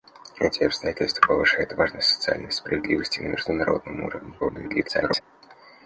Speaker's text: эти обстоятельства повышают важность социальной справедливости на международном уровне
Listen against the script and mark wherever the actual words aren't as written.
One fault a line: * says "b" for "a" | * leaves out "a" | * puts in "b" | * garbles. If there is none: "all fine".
* garbles